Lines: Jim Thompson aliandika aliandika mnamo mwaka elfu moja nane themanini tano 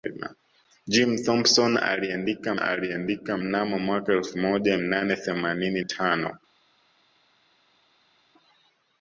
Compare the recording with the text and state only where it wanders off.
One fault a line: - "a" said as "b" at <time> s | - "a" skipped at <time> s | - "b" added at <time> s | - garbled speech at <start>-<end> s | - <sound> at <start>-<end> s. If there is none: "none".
none